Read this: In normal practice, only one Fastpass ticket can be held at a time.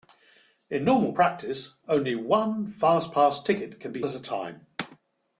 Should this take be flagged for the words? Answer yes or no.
yes